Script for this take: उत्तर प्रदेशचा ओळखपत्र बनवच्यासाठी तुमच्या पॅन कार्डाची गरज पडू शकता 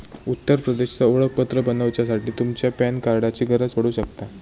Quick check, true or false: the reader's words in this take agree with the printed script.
true